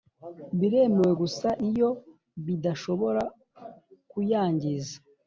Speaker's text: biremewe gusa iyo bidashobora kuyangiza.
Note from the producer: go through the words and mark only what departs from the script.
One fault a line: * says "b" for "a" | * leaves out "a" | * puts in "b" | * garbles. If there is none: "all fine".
all fine